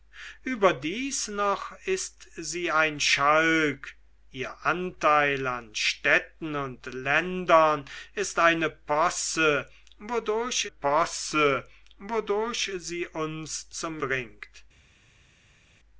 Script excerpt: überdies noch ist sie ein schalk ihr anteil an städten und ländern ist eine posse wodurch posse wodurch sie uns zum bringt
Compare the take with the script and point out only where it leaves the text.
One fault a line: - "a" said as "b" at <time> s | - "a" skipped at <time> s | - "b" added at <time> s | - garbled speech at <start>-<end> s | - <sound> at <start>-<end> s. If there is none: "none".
none